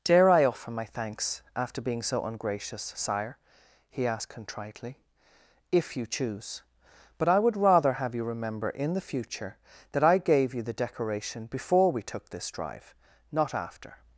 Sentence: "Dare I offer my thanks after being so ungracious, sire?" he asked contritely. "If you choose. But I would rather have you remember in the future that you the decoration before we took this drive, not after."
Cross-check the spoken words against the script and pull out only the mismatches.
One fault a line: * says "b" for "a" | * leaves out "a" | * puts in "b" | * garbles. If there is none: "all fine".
* puts in "I gave"